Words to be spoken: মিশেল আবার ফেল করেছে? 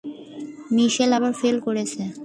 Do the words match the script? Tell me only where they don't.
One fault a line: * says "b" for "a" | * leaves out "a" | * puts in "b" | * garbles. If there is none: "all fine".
all fine